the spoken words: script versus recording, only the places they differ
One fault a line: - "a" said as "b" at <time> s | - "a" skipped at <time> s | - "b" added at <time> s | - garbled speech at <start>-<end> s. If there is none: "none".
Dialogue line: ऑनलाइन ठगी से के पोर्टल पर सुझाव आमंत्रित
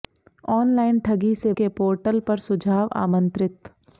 none